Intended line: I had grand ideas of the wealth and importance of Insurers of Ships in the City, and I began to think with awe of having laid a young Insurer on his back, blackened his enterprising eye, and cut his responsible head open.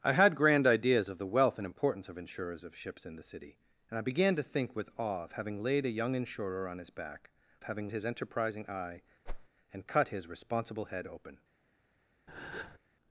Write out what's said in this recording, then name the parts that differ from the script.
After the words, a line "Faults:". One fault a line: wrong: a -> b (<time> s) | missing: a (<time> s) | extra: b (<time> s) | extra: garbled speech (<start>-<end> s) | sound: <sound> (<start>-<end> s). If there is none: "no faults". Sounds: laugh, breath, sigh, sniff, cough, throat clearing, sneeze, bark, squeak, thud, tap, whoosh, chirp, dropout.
I had grand ideas of the wealth and importance of Insurers of Ships in the City, and I began to think with awe of having laid a young Insurer on his back, having his enterprising eye, and cut his responsible head open.
Faults:
wrong: blackened -> having (7.6 s)
sound: whoosh (9.3-9.5 s)
sound: breath (12.3-12.8 s)